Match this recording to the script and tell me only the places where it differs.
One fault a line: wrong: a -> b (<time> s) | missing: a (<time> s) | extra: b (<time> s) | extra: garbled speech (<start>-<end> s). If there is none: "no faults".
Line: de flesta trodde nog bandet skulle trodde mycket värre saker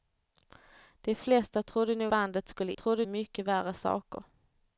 no faults